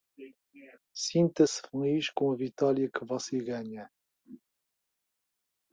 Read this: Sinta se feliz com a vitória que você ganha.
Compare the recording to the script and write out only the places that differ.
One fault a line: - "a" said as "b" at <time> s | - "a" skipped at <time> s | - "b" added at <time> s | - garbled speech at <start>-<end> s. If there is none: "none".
none